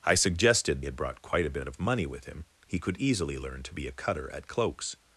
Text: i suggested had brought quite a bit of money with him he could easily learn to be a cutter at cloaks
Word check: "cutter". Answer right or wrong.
right